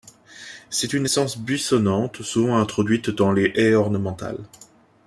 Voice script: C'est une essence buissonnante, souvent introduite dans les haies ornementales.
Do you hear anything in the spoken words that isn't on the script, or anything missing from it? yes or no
no